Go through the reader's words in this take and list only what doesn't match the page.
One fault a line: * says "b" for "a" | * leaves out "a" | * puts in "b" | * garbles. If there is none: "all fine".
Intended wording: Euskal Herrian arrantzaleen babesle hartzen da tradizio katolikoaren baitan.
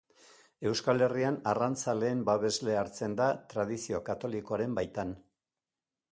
all fine